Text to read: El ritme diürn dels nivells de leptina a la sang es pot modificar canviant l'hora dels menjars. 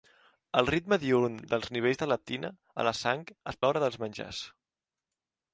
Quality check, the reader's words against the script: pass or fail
fail